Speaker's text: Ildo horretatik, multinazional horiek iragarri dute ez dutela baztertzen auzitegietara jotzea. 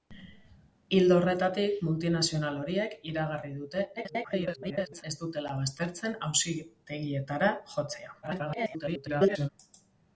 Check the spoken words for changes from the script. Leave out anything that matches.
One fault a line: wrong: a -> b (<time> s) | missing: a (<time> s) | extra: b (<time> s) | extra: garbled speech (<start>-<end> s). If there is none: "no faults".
extra: garbled speech (4.0-5.0 s)
extra: garbled speech (8.2-9.5 s)